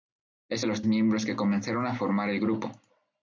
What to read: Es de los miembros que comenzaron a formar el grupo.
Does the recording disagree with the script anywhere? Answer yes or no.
no